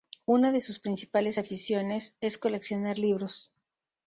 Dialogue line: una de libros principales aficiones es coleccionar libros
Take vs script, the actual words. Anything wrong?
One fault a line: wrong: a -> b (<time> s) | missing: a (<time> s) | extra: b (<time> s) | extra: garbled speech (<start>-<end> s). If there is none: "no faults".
wrong: libros -> sus (0.6 s)